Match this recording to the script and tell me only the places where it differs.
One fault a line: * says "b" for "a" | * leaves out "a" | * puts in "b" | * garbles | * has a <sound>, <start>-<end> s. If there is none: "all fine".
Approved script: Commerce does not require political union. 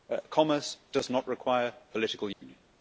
* has a dropout, 2.3-2.4 s